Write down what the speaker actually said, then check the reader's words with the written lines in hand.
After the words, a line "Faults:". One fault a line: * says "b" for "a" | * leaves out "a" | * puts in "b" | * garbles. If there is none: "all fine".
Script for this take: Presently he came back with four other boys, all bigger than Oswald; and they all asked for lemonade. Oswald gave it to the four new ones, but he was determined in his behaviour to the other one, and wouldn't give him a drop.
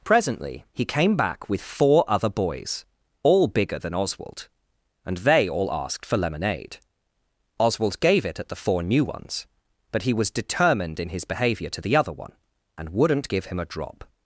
Presently he came back with four other boys, all bigger than Oswald; and they all asked for lemonade. Oswald gave it at the four new ones, but he was determined in his behaviour to the other one, and wouldn't give him a drop.
Faults:
* says "at" for "to"